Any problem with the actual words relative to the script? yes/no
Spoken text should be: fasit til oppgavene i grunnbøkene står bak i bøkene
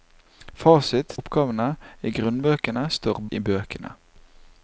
yes